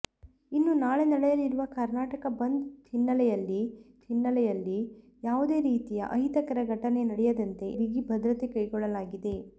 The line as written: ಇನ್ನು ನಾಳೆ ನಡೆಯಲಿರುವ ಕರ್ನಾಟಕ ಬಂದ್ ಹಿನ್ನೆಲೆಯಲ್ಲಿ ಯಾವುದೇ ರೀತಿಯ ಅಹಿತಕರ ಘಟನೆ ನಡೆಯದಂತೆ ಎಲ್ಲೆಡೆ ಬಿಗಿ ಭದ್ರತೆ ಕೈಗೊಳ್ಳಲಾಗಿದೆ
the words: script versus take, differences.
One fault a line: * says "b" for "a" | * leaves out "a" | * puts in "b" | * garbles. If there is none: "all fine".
* puts in "ಹಿನ್ನೆಲೆಯಲ್ಲಿ"
* leaves out "ಎಲ್ಲೆಡೆ"